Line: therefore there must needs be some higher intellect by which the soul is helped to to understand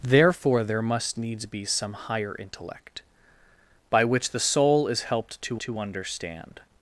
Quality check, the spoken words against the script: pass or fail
pass